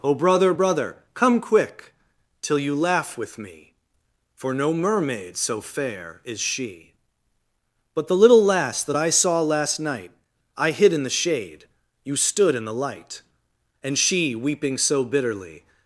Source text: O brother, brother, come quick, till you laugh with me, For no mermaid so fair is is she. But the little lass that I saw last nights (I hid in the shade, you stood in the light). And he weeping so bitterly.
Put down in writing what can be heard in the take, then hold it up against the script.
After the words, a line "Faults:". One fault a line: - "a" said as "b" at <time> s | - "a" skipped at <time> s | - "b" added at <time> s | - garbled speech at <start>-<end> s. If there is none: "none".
O brother, brother, come quick, till you laugh with me, For no mermaid so fair is she. But the little lass that I saw last night (I hid in the shade, you stood in the light). And she weeping so bitterly.
Faults:
- "is" skipped at 6.4 s
- "nights" said as "night" at 9.8 s
- "he" said as "she" at 14.0 s